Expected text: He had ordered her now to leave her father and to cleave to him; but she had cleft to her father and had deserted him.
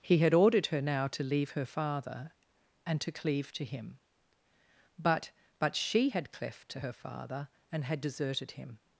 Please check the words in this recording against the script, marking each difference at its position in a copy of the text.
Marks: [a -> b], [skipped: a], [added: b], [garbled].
He had ordered her now to leave her father and to cleave to him; but [added: but] she had cleft to her father and had deserted him.